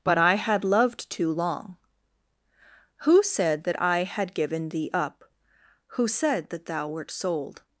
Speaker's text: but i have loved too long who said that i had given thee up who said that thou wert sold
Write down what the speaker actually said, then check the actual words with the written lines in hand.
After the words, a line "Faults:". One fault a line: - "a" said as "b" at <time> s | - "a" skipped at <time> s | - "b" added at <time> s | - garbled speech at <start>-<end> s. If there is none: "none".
but i had loved too long who said that i had given thee up who said that thou wert sold
Faults:
- "have" said as "had" at 0.3 s